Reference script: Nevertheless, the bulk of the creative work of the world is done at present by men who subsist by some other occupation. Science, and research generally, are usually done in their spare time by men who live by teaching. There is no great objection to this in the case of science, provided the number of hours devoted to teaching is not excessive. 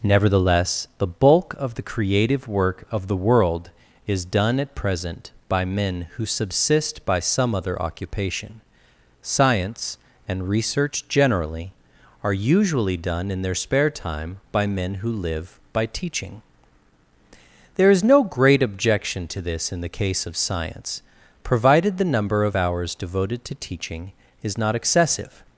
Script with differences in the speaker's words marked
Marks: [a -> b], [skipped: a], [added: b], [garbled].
Nevertheless, the bulk of the creative work of the world is done at present by men who subsist by some other occupation. Science, and research generally, are usually done in their spare time by men who live by teaching. There is no great objection to this in the case of science, provided the number of hours devoted to teaching is not excessive.